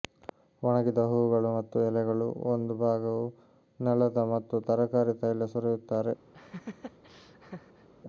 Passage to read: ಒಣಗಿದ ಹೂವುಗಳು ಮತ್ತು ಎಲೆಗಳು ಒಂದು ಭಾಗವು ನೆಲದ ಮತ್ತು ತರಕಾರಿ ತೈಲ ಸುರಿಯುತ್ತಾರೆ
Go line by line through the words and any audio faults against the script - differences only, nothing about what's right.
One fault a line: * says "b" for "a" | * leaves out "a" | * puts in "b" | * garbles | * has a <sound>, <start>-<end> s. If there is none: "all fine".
* has a laugh, 6.3-7.9 s